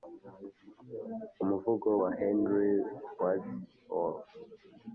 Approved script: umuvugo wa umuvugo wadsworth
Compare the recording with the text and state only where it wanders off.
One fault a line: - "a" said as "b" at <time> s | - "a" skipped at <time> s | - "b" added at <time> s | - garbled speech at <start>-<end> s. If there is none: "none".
- "umuvugo" said as "henry" at 2.2 s